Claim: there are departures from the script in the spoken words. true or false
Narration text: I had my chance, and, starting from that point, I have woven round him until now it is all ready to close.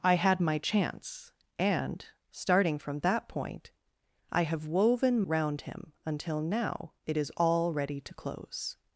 false